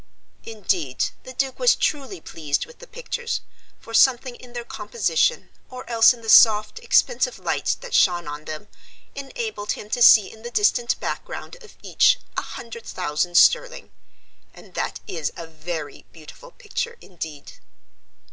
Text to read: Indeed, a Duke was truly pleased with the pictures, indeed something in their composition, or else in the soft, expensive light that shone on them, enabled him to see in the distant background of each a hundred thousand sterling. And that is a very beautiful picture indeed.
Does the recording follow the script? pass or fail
fail